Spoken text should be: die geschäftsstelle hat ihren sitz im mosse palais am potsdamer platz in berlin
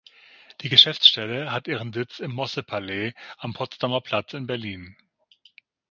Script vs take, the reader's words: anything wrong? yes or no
no